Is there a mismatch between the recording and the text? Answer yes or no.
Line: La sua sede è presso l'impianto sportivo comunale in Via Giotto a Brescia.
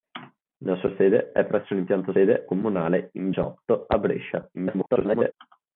yes